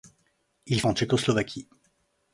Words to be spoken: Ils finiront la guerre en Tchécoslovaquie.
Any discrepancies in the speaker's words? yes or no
yes